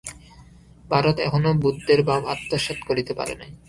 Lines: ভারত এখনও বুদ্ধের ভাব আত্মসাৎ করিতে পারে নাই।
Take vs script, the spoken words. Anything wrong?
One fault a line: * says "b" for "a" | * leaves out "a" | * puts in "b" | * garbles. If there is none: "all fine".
all fine